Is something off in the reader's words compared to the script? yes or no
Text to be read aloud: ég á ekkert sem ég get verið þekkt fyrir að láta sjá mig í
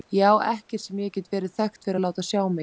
no